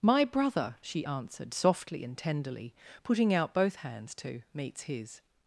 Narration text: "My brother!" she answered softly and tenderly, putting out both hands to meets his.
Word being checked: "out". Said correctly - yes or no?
yes